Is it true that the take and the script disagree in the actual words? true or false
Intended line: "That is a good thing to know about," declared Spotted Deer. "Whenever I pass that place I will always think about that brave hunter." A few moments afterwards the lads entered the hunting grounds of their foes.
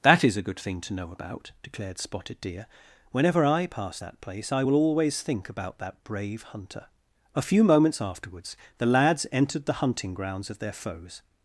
false